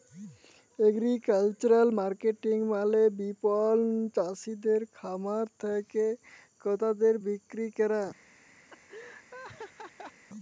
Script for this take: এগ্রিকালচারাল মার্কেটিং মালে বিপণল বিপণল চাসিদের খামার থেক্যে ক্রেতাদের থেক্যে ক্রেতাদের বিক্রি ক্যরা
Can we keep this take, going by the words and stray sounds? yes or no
no